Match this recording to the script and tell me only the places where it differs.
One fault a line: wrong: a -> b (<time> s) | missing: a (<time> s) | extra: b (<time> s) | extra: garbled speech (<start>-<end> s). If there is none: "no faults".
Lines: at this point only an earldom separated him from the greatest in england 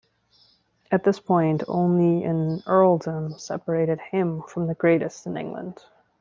no faults